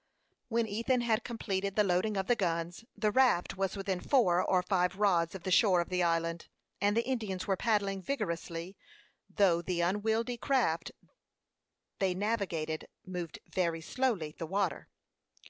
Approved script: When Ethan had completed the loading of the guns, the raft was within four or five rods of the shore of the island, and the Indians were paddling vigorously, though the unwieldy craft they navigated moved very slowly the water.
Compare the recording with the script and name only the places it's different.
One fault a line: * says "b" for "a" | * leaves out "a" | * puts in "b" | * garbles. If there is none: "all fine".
all fine